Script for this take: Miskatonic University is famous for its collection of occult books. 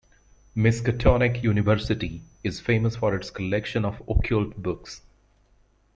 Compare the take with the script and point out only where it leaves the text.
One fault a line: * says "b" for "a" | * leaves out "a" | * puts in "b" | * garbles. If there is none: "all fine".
all fine